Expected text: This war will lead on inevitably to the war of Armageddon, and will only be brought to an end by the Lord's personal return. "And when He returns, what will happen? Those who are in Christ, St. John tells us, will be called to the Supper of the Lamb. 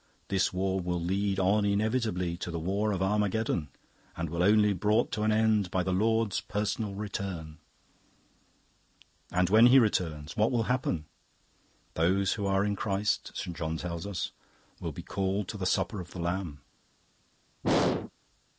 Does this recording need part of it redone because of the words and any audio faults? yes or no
yes